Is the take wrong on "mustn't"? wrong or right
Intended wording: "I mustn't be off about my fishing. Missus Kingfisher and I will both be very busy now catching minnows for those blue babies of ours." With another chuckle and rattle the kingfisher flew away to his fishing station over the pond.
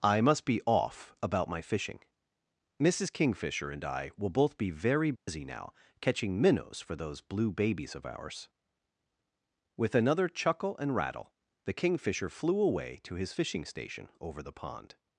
wrong